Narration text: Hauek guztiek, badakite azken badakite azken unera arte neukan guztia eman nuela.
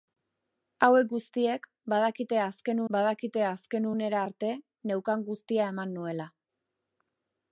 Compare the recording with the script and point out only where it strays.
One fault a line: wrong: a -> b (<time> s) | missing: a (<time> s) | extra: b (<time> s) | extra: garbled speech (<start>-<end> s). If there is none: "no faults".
no faults